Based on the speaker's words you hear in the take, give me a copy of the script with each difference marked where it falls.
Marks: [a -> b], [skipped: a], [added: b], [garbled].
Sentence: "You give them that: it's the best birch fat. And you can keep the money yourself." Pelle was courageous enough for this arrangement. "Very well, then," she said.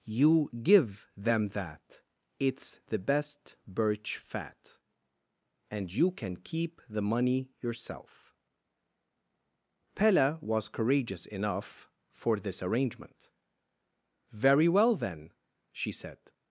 "You give them that: it's the best birch fat. And you can keep the money yourself." Pelle was courageous enough for this arrangement. "Very well, then," she said.